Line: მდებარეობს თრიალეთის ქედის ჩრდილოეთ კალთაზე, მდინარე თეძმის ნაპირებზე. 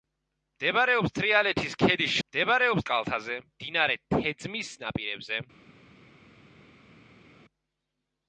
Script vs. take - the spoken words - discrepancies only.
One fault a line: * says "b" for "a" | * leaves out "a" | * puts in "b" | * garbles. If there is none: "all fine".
* says "მდებარეობს" for "ჩრდილოეთ"